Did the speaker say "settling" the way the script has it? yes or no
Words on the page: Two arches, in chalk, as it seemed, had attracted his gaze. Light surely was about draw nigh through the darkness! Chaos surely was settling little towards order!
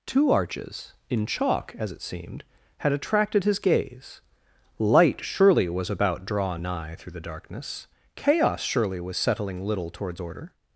yes